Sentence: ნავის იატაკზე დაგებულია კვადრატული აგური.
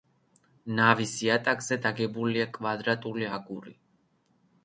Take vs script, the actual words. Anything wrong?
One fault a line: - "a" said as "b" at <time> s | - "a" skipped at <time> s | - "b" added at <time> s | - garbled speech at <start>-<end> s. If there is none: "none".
none